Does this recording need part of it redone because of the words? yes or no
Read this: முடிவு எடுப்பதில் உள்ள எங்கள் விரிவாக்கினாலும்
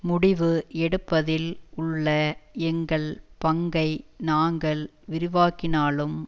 yes